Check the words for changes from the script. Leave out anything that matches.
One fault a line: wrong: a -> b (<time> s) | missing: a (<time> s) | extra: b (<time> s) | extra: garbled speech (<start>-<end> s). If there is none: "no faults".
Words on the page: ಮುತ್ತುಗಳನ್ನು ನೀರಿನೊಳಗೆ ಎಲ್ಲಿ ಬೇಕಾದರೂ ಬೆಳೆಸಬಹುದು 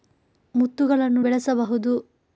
missing: ನೀರಿನೊಳಗೆ ಎಲ್ಲಿ ಬೇಕಾದರೂ (1.2 s)